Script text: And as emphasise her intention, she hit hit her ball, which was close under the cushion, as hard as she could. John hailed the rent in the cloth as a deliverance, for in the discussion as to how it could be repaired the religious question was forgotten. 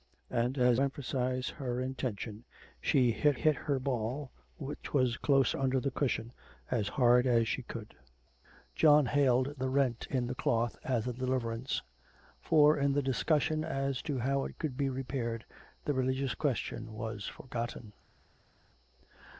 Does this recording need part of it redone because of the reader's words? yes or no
no